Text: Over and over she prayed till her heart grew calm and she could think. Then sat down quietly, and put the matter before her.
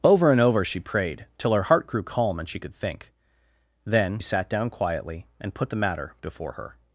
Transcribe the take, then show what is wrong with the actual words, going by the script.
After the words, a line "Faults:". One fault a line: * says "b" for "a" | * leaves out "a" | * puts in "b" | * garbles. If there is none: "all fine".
Over and over she prayed till her heart grew calm and she could think. Then sat down quietly, and put the matter before her.
Faults:
all fine